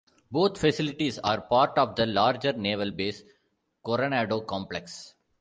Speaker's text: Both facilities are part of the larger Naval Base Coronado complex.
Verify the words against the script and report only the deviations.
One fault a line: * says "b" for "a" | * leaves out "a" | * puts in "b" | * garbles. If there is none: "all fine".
all fine